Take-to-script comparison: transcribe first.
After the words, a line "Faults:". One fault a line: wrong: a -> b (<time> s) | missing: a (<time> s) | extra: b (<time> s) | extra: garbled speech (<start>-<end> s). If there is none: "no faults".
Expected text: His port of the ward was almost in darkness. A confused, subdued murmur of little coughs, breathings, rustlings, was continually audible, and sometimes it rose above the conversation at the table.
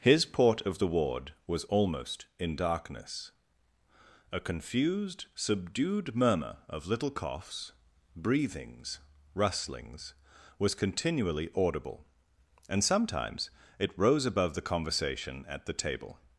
His port of the ward was almost in darkness. A confused, subdued murmur of little coughs, breathings, rustlings, was continually audible, and sometimes it rose above the conversation at the table.
Faults:
no faults